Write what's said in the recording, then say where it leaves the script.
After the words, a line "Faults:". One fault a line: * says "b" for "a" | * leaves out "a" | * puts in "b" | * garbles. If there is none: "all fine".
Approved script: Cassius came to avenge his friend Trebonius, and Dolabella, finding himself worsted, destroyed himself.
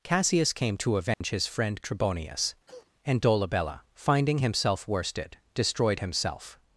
Cassius came to avenge his friend Trebonius, and Dolabella, finding himself worsted, destroyed himself.
Faults:
all fine